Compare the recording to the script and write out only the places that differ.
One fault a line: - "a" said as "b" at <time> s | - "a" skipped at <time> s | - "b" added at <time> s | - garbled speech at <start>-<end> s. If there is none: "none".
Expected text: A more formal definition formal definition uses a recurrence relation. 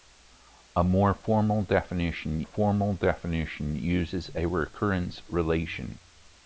none